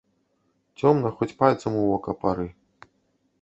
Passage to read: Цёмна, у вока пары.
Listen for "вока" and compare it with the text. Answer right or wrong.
right